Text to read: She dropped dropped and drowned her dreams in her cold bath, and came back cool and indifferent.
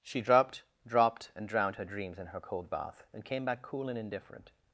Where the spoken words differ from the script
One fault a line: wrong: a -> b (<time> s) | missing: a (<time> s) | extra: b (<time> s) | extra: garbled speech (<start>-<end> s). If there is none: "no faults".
no faults